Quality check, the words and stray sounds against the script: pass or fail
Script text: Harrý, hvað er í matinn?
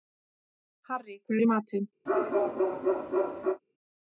fail